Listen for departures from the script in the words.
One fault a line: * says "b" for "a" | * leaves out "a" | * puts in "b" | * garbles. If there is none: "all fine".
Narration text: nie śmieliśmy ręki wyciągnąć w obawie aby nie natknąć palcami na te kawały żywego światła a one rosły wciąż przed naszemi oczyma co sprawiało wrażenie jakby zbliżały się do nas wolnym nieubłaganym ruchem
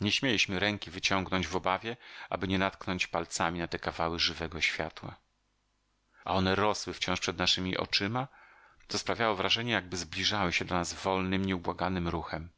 all fine